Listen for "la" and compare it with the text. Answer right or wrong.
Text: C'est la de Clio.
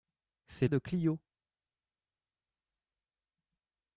wrong